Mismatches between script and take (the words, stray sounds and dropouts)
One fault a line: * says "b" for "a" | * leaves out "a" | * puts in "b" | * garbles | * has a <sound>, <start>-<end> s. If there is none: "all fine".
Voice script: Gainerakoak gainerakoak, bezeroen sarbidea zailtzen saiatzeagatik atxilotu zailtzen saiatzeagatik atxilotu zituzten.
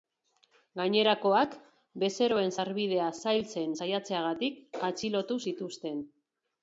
* leaves out "gainerakoak"
* leaves out "zailtzen saiatzeagatik atxilotu"